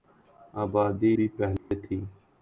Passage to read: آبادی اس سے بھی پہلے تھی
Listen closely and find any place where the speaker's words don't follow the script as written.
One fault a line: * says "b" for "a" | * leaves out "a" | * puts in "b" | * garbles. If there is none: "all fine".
* leaves out "اس سے"